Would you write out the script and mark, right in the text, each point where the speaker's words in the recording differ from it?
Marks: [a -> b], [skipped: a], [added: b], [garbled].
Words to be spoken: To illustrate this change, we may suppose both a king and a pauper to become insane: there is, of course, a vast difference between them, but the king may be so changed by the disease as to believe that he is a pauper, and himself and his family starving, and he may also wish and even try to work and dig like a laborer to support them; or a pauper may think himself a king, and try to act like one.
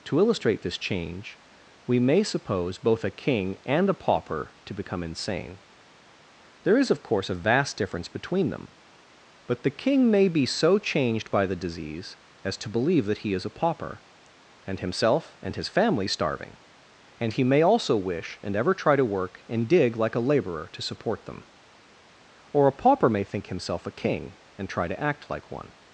To illustrate this change, we may suppose both a king and a pauper to become insane: there is, of course, a vast difference between them, but the king may be so changed by the disease as to believe that he is a pauper, and himself and his family starving, and he may also wish and [even -> ever] try to work and dig like a laborer to support them; or a pauper may think himself a king, and try to act like one.